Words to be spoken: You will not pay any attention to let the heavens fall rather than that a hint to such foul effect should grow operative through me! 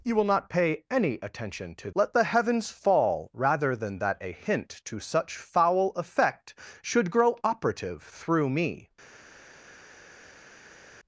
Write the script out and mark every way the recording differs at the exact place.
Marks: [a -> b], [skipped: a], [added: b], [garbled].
You will not pay any attention to let the heavens fall rather than that a hint to such foul effect should grow operative through me!